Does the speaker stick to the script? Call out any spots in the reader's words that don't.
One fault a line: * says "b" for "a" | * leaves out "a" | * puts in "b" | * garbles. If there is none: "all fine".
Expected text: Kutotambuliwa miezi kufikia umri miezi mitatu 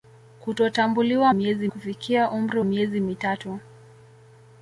all fine